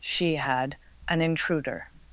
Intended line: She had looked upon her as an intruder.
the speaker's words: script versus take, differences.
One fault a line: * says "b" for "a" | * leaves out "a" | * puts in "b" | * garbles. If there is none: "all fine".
* leaves out "looked upon her as"